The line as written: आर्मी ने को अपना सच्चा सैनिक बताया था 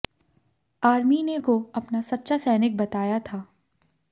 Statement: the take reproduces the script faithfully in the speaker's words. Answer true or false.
true